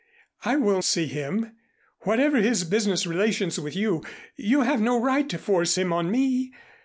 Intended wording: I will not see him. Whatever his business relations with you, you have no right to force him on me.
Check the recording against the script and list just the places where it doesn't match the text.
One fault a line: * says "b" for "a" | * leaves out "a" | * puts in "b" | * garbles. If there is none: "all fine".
* leaves out "not"